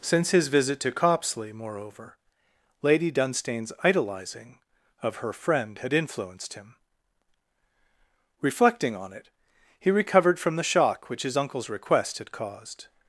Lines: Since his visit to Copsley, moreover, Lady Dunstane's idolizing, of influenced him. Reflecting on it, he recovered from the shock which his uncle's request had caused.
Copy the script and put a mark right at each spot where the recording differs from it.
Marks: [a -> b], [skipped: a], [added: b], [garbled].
Since his visit to Copsley, moreover, Lady Dunstane's idolizing, of [added: her friend had] influenced him. Reflecting on it, he recovered from the shock which his uncle's request had caused.